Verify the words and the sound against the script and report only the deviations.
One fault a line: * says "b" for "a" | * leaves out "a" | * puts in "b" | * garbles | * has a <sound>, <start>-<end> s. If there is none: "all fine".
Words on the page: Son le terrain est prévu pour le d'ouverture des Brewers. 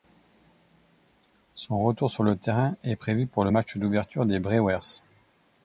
* puts in "retour sur"
* puts in "match"